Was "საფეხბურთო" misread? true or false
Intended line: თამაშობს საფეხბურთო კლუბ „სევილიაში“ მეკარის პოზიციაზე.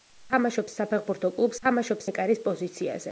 false